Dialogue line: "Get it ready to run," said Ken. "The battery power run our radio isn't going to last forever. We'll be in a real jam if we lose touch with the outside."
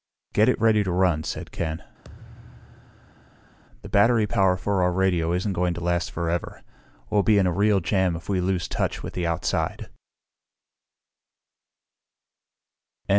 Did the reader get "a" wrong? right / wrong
right